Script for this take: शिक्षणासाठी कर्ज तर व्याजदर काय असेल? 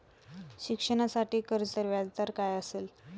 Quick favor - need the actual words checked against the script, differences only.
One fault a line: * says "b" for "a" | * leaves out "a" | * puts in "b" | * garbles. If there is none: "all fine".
all fine